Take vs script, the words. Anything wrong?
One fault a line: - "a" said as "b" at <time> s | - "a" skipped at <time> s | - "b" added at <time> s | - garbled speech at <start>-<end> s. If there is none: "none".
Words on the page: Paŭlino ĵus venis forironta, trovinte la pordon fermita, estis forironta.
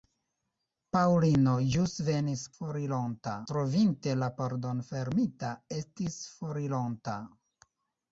none